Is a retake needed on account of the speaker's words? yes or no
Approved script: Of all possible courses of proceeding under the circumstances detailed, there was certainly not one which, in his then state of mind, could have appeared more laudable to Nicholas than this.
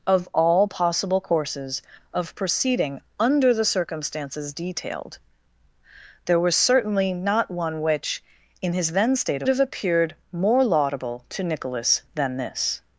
yes